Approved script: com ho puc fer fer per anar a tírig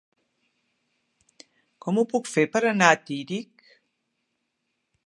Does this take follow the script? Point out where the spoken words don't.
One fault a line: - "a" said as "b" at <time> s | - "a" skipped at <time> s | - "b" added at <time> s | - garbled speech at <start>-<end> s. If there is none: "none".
- "fer" skipped at 2.5 s